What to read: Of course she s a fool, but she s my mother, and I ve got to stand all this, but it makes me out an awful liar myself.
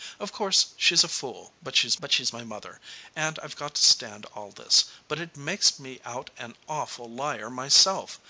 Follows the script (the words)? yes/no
no